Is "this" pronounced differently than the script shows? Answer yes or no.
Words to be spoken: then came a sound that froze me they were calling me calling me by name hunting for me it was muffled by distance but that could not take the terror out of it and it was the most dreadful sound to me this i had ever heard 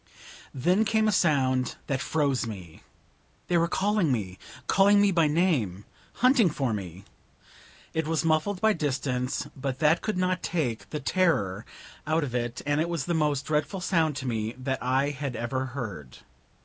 yes